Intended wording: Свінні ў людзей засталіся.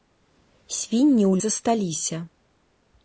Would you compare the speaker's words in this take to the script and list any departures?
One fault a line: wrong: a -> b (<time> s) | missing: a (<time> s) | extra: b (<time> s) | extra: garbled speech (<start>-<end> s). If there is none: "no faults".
missing: людзей (1.3 s)